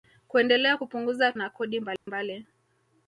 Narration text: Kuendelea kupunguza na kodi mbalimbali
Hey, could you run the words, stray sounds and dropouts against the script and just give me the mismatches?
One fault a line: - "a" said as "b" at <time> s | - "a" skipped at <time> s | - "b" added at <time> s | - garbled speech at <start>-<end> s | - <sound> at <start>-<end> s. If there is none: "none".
- dropout at 2.0-2.1 s